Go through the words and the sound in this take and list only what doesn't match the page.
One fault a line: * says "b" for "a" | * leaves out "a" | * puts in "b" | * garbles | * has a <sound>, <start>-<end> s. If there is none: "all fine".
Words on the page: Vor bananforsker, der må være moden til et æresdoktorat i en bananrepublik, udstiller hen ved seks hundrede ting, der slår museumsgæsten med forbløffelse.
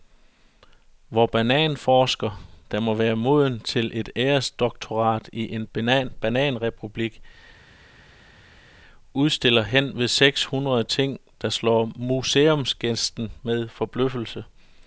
all fine